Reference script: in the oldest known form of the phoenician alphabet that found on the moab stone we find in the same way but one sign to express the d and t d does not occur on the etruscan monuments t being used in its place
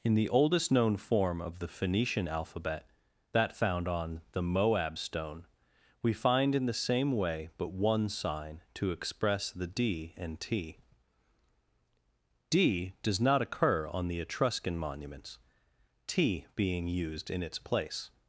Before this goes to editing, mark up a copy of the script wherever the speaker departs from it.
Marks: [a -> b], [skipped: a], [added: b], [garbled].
in the oldest known form of the phoenician alphabet that found on the moab stone we find in the same way but one sign to express the d and t d does not occur on the etruscan monuments t being used in its place